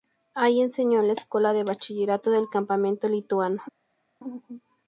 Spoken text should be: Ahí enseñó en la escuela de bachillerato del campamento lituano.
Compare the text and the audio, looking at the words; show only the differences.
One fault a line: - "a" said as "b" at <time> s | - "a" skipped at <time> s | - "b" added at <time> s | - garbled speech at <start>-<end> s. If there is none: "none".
none